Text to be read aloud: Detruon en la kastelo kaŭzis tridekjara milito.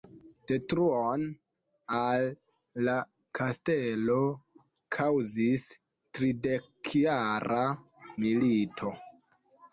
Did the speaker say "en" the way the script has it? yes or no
no